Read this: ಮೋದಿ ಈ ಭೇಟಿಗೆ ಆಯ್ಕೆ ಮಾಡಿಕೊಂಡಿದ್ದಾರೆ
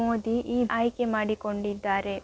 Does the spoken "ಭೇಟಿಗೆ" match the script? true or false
false